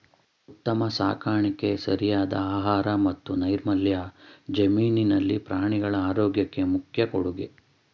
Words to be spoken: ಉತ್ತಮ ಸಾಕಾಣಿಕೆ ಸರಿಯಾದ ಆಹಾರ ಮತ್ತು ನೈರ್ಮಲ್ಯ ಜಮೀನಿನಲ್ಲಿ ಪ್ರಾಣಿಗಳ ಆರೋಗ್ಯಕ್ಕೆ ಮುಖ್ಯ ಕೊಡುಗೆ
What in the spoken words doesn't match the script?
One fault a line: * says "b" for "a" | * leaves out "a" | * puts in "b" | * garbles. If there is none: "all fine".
all fine